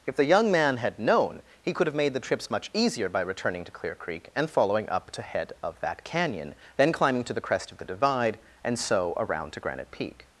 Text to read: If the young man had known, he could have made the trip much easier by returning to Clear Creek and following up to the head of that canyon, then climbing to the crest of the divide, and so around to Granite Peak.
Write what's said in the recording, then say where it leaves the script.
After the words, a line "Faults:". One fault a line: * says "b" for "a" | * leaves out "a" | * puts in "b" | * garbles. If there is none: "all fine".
If the young man had known, he could have made the trips much easier by returning to Clear Creek and following up to head of that canyon, then climbing to the crest of the divide, and so around to Granite Peak.
Faults:
* says "trips" for "trip"
* leaves out "the"